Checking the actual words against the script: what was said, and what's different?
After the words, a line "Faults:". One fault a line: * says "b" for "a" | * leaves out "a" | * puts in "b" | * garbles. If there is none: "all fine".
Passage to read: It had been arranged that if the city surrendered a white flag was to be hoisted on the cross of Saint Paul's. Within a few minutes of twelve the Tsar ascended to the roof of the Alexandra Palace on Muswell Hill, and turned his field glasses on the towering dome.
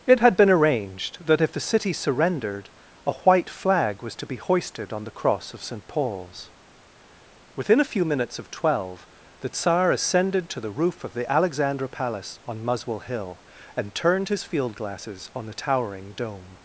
It had been arranged that if the city surrendered a white flag was to be hoisted on the cross of Saint Paul's. Within a few minutes of twelve the Tsar ascended to the roof of the Alexandra Palace on Muswell Hill, and turned his field glasses on the towering dome.
Faults:
all fine